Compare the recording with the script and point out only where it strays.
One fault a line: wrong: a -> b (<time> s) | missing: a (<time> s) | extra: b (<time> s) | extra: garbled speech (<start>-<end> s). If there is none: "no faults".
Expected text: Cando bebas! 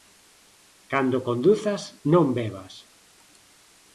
extra: conduzas non (1.3 s)